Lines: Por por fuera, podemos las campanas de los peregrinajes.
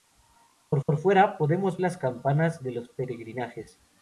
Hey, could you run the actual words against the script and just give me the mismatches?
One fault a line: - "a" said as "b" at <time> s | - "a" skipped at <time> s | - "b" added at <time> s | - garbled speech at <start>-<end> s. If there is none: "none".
none